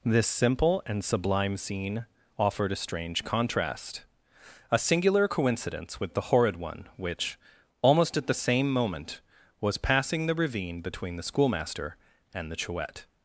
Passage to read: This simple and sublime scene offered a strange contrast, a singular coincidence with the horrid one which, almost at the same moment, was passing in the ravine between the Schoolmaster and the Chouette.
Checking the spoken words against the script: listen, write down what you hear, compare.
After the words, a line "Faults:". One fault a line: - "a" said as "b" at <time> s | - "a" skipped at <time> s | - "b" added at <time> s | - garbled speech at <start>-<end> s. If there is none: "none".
This simple and sublime scene offered a strange contrast, a singular coincidence with the horrid one which, almost at the same moment, was passing the ravine between the Schoolmaster and the Chouette.
Faults:
- "in" skipped at 10.3 s